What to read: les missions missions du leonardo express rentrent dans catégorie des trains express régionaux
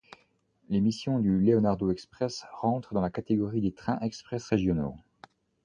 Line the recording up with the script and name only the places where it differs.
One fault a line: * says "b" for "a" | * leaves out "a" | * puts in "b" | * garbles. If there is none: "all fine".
* leaves out "missions"
* puts in "la"